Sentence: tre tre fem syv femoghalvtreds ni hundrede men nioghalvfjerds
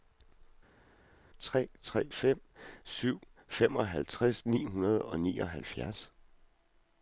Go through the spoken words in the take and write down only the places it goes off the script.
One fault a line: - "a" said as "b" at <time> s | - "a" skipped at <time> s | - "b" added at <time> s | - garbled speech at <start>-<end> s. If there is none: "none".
- "men" said as "og" at 5.1 s